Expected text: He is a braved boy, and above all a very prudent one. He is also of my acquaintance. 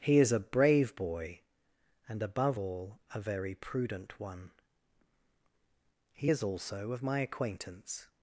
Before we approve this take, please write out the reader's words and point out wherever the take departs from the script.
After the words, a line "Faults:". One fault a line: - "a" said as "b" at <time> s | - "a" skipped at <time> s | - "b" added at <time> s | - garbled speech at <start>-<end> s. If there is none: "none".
He is a brave boy, and above all a very prudent one. He is also of my acquaintance.
Faults:
- "braved" said as "brave" at 0.4 s